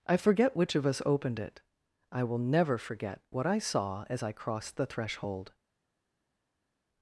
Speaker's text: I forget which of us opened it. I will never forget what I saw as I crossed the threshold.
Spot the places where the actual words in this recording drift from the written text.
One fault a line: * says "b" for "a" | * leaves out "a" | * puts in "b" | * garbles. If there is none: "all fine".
all fine